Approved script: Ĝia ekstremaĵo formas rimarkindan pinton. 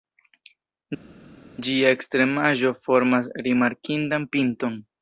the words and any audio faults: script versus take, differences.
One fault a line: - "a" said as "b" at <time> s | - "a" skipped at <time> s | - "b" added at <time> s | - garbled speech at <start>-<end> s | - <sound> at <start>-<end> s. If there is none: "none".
none